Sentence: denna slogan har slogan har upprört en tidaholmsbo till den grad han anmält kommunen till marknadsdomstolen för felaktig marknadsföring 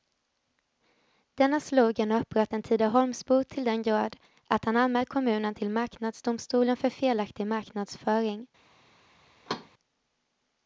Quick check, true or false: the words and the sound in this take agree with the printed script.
false